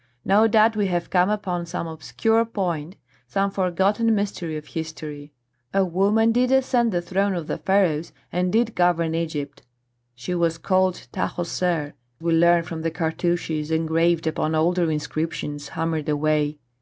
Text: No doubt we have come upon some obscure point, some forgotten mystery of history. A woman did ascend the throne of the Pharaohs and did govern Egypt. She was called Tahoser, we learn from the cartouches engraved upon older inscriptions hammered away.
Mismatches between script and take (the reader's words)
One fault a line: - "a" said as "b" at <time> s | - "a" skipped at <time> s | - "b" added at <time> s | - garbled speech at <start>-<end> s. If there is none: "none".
none